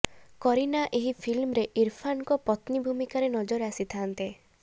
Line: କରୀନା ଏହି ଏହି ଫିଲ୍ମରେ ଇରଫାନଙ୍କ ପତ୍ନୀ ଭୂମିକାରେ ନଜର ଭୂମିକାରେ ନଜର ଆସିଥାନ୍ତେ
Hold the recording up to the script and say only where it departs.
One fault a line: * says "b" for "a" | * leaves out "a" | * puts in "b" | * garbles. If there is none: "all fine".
* leaves out "ଏହି"
* leaves out "ଭୂମିକାରେ ନଜର"